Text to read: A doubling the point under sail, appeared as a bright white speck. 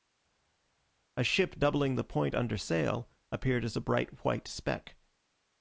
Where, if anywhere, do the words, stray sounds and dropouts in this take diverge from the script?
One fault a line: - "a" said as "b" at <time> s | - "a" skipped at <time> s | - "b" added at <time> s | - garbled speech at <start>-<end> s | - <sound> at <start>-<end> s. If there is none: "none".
- "ship" added at 1.2 s